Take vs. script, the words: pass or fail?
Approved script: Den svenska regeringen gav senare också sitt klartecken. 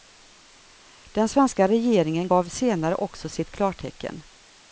pass